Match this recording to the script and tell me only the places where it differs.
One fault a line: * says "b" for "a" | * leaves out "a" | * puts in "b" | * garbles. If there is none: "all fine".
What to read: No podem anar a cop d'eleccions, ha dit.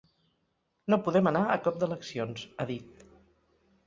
all fine